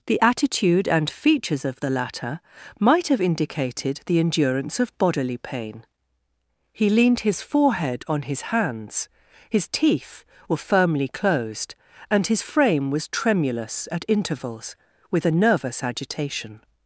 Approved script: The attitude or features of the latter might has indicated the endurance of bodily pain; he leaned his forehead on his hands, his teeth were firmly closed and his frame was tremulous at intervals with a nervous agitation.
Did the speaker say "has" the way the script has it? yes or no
no